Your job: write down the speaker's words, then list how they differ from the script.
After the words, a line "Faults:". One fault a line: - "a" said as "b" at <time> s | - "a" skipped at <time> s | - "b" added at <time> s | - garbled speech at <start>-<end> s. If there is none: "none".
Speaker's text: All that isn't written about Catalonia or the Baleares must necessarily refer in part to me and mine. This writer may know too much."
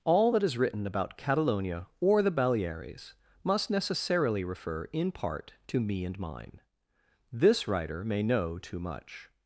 All that is written about Catalonia or the Baleares must necessarily refer in part to me and mine. This writer may know too much."
Faults:
- "isn't" said as "is" at 0.4 s